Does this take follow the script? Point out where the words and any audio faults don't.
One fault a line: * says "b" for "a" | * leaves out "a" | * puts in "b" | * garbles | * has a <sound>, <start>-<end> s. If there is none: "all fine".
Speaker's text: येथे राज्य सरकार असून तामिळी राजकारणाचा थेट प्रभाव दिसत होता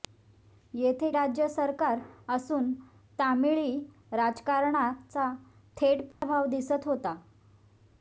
* has a dropout, 6.1-6.2 s